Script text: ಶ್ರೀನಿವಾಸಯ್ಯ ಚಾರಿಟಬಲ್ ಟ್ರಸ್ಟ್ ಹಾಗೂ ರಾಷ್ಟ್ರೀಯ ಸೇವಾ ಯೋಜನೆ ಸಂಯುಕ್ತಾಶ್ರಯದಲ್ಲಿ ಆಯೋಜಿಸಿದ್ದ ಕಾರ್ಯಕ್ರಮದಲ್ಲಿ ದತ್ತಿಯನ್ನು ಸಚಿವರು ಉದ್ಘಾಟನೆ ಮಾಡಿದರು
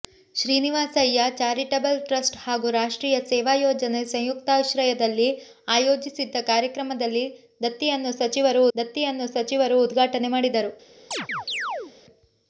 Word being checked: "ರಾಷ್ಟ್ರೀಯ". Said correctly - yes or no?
yes